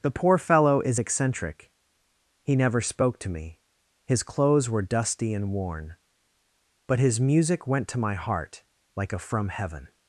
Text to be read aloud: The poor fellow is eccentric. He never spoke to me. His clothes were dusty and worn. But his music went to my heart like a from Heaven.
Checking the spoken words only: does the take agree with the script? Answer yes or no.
yes